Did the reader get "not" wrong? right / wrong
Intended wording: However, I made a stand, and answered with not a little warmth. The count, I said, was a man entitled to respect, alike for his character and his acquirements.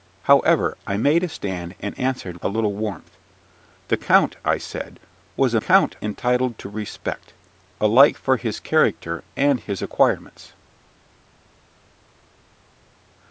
wrong